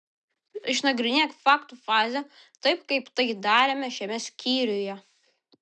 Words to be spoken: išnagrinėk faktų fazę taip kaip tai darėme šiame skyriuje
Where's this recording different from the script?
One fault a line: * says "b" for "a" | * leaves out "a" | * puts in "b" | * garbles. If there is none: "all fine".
all fine